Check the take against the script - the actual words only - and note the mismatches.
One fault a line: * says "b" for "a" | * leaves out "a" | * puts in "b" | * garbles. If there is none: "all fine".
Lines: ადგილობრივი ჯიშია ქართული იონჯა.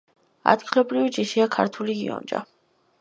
all fine